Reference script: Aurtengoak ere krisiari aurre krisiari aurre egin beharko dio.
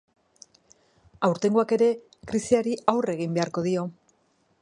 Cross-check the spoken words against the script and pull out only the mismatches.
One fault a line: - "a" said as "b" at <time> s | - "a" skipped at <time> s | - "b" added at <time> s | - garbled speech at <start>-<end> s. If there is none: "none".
- "krisiari aurre" skipped at 3.2 s